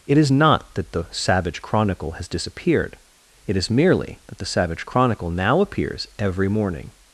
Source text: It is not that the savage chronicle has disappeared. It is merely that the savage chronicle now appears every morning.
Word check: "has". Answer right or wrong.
right